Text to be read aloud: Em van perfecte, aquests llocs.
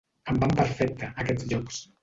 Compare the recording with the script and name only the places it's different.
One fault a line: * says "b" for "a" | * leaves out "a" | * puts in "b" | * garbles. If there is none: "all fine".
all fine